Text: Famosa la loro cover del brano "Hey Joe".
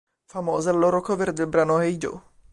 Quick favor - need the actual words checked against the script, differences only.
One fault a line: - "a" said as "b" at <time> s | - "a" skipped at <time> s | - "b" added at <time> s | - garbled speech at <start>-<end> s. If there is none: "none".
none